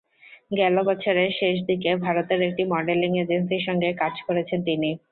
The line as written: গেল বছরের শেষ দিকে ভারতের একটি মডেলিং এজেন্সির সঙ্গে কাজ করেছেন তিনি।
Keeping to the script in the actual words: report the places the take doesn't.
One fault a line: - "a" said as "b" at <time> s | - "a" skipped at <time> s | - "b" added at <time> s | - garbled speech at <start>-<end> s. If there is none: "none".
none